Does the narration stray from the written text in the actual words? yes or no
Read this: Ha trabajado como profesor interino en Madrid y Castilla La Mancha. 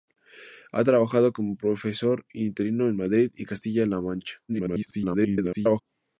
yes